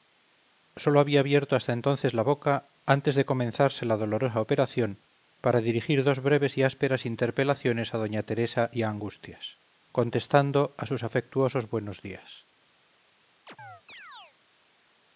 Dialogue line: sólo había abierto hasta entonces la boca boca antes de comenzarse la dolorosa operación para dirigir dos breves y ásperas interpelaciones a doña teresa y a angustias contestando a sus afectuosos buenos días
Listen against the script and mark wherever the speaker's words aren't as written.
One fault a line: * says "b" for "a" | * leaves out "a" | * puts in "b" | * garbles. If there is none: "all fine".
* leaves out "boca"